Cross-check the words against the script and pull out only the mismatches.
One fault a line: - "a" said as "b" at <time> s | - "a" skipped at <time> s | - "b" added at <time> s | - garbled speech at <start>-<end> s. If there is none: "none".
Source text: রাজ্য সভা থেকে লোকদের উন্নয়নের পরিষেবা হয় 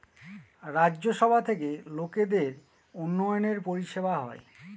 none